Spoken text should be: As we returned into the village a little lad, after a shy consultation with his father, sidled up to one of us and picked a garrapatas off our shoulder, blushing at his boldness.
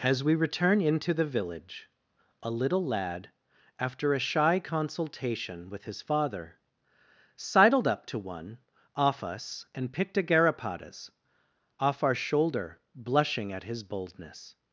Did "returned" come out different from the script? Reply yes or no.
yes